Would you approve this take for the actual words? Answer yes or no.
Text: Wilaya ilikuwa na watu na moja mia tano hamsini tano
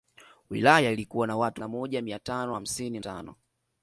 yes